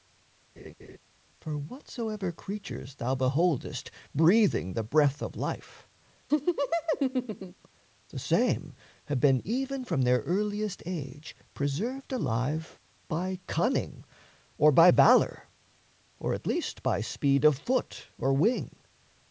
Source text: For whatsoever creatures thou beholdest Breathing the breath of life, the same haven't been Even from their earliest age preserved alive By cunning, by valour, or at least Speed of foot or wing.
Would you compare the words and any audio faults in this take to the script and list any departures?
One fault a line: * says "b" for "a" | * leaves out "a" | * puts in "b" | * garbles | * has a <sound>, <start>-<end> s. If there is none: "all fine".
* has a laugh, 0.6-1.0 s
* has a laugh, 6.3-7.7 s
* says "have" for "haven't"
* puts in "or"
* puts in "By"